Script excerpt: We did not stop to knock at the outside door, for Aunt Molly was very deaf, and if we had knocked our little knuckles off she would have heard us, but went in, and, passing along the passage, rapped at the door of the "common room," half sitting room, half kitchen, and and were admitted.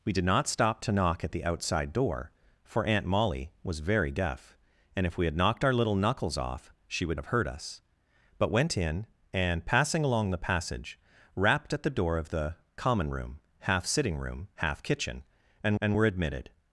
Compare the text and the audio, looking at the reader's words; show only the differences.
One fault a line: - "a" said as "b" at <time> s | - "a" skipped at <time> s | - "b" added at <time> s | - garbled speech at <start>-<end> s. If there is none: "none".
none